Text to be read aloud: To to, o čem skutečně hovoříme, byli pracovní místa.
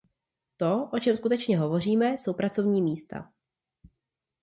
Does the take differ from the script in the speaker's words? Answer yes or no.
yes